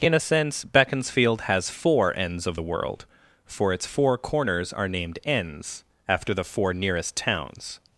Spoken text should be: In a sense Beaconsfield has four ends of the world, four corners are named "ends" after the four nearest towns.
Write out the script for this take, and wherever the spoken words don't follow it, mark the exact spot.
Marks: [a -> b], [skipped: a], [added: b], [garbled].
In a sense Beaconsfield has four ends of the world, [added: for its] four corners are named "ends" after the four nearest towns.